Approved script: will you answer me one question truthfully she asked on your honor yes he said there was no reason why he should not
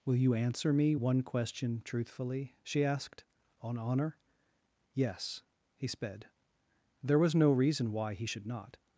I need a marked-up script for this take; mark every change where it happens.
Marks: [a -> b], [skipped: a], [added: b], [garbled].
will you answer me one question truthfully she asked on [skipped: your] honor yes he [said -> sped] there was no reason why he should not